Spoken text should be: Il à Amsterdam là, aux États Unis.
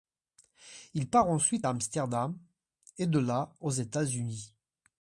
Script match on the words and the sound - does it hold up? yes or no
no